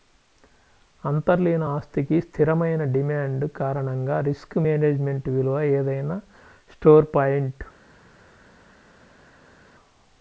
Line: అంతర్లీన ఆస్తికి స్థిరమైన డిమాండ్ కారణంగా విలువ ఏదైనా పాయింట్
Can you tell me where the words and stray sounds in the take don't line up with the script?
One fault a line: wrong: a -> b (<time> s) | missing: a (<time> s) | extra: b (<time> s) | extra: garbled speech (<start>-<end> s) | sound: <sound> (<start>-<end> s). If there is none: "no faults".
extra: రిస్క్ మేనేజ్మెంట్ (4.2 s)
extra: స్టోర్ (6.7 s)